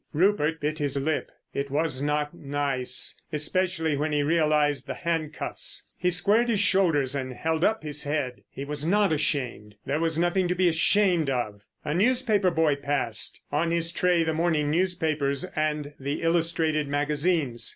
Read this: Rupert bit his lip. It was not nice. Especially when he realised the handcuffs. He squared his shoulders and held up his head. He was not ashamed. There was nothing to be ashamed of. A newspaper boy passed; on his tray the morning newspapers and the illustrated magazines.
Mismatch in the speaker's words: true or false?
false